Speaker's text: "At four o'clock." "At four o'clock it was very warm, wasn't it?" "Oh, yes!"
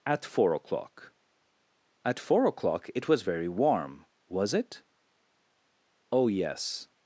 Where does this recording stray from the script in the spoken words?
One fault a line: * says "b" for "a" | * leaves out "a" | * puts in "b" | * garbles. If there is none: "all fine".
* says "was" for "wasn't"